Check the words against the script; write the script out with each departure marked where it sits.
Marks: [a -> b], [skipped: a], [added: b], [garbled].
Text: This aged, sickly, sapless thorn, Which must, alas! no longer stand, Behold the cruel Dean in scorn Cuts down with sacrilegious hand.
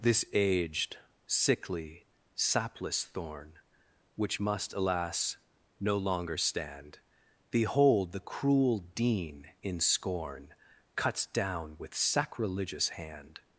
This aged, sickly, sapless thorn, Which must, alas! no longer stand, Behold the cruel Dean in scorn Cuts down with sacrilegious hand.